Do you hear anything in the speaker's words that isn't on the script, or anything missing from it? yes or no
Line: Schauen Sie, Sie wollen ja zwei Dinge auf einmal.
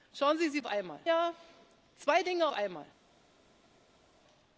yes